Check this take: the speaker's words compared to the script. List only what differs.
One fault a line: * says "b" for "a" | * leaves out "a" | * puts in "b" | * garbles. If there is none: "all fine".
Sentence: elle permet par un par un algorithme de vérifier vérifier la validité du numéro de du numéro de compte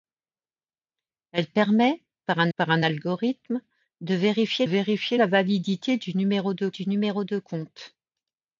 all fine